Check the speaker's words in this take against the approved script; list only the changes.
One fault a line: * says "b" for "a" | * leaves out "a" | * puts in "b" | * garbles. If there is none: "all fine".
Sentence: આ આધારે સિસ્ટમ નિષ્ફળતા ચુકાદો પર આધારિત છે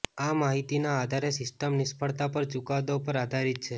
* puts in "માહિતીના"
* puts in "પર"